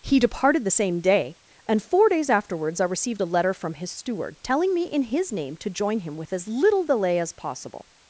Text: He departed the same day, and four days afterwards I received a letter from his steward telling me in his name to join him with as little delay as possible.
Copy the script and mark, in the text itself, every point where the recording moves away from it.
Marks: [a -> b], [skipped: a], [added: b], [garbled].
He departed the same day, and four days afterwards I received a letter from his steward telling me in his name to join him with as little delay as possible.